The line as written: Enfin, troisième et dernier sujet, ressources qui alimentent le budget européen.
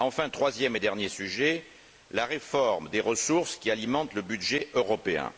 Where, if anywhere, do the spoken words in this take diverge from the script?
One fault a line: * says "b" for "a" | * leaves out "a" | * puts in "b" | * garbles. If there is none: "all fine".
* puts in "la réforme des"